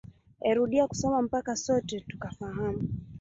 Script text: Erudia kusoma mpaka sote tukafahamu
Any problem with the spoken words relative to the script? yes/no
no